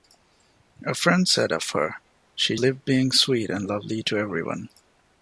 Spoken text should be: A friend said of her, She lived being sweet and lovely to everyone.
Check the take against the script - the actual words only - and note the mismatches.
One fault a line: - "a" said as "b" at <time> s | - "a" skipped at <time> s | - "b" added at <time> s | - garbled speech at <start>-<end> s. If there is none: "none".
none